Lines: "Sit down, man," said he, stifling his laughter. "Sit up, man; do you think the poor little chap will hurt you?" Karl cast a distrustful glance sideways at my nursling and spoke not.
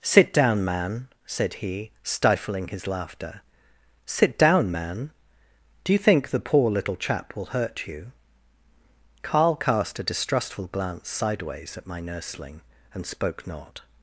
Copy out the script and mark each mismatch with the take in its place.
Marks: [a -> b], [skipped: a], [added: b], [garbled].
"Sit down, man," said he, stifling his laughter. "Sit [up, -> down] man; do you think the poor little chap will hurt you?" Karl cast a distrustful glance sideways at my nursling and spoke not.